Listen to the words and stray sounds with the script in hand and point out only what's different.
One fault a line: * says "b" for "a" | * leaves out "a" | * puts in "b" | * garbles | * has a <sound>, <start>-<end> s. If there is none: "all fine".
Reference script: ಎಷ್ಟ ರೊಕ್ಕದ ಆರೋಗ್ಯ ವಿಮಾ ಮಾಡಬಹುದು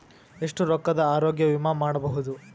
all fine